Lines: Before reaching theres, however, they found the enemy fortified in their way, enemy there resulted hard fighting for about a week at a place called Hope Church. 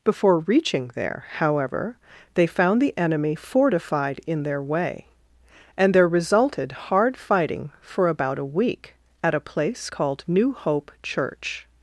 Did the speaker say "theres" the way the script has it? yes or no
no